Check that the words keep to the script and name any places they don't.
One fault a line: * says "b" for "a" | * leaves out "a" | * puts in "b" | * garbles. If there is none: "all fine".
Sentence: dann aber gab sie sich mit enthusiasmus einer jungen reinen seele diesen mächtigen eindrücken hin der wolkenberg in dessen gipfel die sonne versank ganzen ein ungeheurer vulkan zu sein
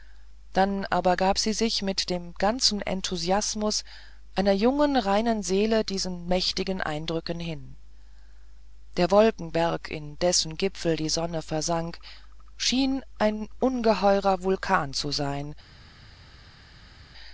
* puts in "dem ganzen"
* says "schien" for "ganzen"